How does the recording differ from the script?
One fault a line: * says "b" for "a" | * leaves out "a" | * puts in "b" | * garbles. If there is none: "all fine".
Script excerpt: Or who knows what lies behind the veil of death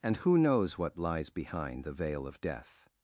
* says "And" for "Or"